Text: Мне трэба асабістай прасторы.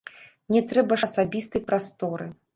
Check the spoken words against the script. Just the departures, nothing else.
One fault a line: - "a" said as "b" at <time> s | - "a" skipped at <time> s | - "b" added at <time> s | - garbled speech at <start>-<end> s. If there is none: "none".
none